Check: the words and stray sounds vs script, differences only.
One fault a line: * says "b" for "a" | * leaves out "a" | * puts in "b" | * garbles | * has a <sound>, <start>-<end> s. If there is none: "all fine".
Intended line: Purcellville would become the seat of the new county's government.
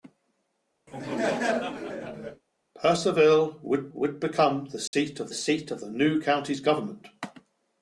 * has a laugh, 0.9-2.4 s
* puts in "would"
* has a dropout, 4.9-4.9 s
* puts in "seat of"